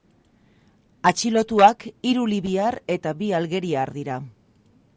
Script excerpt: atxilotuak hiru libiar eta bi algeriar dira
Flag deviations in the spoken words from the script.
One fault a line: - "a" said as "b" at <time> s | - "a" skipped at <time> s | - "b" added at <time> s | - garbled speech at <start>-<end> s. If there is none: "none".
none